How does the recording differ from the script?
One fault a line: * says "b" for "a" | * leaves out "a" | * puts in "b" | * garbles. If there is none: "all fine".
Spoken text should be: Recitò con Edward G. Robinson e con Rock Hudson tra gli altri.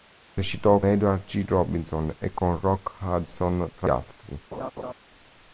* leaves out "con"
* leaves out "gli"